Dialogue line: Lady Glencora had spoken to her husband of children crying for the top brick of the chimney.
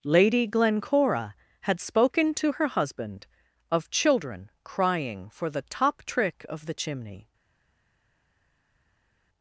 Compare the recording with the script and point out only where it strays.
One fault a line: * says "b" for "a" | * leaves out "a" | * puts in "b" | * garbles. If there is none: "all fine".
* says "trick" for "brick"